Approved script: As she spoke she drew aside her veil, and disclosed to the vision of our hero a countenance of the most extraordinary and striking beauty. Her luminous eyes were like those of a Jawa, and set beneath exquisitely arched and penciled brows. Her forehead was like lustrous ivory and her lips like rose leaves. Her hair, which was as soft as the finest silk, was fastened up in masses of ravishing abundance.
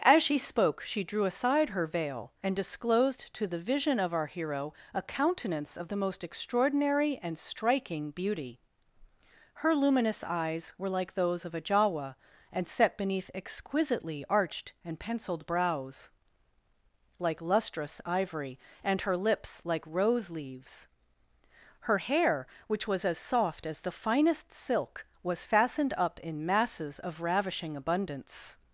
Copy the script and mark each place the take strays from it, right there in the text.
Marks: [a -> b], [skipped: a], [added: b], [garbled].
As she spoke she drew aside her veil, and disclosed to the vision of our hero a countenance of the most extraordinary and striking beauty. Her luminous eyes were like those of a Jawa, and set beneath exquisitely arched and penciled brows. [skipped: Her forehead was] like lustrous ivory and her lips like rose leaves. Her hair, which was as soft as the finest silk, was fastened up in masses of ravishing abundance.